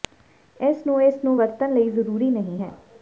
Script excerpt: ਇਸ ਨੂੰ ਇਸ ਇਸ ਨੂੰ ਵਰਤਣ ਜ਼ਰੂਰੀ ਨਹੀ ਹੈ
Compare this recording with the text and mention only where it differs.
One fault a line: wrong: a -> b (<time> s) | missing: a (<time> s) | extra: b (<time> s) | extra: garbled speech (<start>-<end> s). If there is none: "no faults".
missing: ਇਸ (1.2 s)
extra: ਲਈ (1.7 s)